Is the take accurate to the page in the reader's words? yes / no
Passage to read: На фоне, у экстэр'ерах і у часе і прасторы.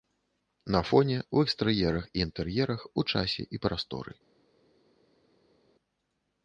no